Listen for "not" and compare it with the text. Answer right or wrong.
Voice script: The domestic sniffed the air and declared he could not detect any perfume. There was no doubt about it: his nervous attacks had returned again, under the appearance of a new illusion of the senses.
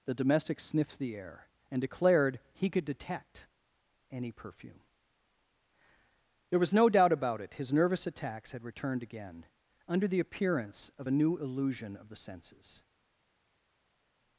wrong